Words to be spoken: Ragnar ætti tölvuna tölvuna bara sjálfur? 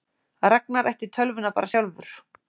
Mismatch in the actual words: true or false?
true